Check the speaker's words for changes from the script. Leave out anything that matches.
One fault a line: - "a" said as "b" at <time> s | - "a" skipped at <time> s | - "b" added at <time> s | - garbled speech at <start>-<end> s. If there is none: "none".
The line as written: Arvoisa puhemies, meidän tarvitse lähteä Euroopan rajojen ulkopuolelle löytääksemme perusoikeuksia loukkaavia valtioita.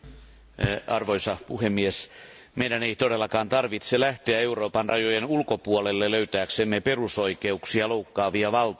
- "ei todellakaan" added at 2.8 s